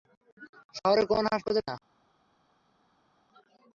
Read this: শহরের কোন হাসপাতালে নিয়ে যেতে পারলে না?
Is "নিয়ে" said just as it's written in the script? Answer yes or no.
no